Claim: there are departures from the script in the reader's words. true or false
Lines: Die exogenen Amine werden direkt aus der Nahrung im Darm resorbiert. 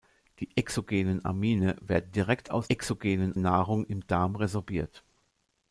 true